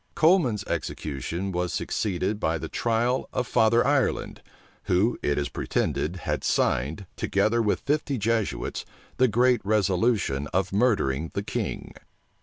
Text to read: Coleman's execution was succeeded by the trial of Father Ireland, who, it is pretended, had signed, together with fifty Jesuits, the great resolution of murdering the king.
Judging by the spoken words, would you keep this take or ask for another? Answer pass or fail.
pass